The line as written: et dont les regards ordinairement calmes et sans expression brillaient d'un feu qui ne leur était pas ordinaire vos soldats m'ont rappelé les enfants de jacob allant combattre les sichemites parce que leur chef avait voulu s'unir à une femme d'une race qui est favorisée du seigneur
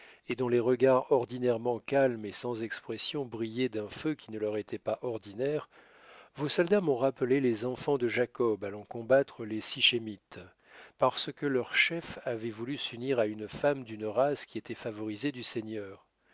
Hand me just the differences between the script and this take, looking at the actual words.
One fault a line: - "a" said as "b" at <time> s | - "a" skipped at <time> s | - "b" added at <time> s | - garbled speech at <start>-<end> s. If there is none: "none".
- "est" said as "était" at 14.6 s